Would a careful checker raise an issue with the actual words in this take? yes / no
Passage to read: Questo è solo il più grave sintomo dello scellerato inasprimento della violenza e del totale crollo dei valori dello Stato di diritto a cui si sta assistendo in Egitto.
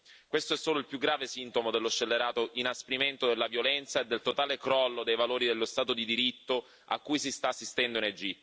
no